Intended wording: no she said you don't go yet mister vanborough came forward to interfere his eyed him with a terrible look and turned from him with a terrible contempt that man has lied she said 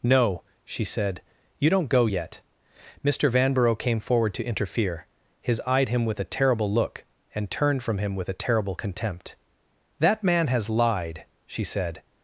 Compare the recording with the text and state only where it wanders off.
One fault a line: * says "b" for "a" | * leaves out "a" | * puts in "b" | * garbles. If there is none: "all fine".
all fine